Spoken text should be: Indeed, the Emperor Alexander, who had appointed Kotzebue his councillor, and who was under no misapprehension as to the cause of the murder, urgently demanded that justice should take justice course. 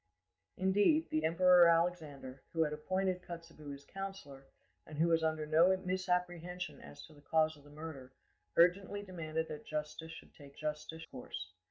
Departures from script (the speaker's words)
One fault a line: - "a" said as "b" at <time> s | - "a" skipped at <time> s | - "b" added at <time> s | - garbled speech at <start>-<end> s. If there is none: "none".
none